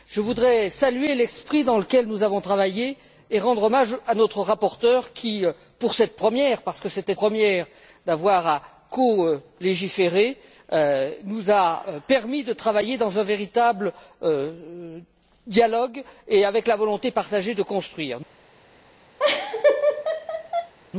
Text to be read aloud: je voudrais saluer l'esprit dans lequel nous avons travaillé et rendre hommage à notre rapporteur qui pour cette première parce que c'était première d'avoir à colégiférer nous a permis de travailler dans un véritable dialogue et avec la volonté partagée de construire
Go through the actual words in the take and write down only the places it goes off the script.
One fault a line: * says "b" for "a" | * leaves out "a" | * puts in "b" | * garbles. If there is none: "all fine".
all fine